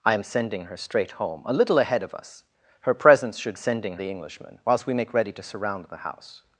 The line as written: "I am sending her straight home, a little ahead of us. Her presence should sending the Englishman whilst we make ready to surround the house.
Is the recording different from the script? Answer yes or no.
no